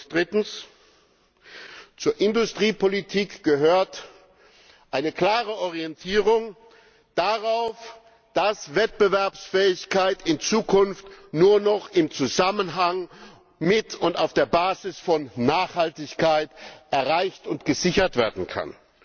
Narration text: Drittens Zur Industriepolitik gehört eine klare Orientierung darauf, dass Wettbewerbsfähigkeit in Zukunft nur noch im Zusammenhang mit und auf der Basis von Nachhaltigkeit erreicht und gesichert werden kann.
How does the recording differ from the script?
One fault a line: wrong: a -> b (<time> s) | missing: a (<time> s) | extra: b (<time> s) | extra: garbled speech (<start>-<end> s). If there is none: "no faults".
no faults